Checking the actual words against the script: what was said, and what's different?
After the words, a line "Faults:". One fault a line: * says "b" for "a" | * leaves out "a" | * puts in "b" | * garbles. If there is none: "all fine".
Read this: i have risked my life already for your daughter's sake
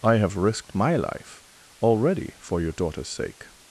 i have risked my life already for your daughter's sake
Faults:
all fine